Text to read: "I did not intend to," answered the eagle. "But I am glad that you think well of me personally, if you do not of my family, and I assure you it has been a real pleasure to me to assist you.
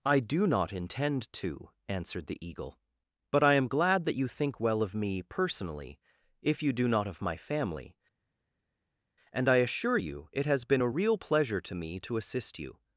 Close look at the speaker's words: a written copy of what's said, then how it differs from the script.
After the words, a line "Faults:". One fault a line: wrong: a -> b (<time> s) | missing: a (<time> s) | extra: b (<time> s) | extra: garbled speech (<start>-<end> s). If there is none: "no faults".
"I do not intend to," answered the eagle. "But I am glad that you think well of me personally, if you do not of my family, and I assure you it has been a real pleasure to me to assist you.
Faults:
wrong: did -> do (0.2 s)